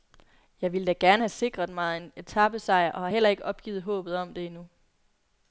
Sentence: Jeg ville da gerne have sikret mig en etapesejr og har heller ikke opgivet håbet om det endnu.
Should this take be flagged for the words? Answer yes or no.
no